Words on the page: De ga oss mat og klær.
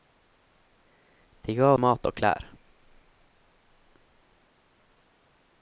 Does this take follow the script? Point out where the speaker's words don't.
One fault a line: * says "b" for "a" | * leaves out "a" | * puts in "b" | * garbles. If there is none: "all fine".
* leaves out "oss"